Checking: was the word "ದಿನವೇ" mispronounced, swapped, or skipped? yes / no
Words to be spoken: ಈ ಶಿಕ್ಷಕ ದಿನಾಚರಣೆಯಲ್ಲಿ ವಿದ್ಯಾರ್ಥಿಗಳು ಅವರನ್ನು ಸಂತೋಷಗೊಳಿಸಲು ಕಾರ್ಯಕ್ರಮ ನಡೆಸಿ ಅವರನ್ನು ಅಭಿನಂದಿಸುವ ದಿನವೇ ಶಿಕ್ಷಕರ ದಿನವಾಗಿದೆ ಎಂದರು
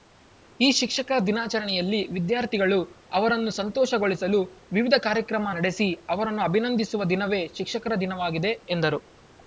no